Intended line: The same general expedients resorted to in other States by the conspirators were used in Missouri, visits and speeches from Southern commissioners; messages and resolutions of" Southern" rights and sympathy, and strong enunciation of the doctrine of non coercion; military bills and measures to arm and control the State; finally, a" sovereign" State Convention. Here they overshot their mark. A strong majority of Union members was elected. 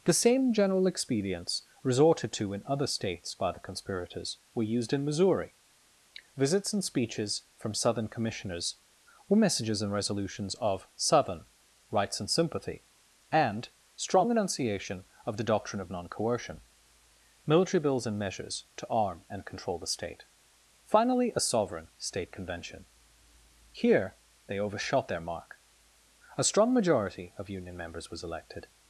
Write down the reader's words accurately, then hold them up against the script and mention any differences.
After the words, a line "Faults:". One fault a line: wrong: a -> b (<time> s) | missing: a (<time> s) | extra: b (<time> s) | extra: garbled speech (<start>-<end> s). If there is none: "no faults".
The same general expedients resorted to in other States by the conspirators were used in Missouri, visits and speeches from Southern commissioners; were messages and resolutions of" Southern" rights and sympathy, and strong enunciation of the doctrine of non coercion; military bills and measures to arm and control the State; finally, a" sovereign" State Convention. Here they overshot their mark. A strong majority of Union members was elected.
Faults:
extra: were (9.3 s)